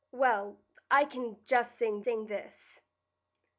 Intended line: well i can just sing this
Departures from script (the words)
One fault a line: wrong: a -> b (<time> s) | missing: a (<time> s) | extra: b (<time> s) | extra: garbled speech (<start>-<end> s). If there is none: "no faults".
extra: sing (2.0 s)